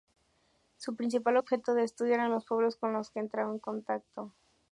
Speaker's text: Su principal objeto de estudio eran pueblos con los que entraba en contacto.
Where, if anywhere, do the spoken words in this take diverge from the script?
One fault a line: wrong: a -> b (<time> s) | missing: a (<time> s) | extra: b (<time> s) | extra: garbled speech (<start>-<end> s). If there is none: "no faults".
extra: los (2.3 s)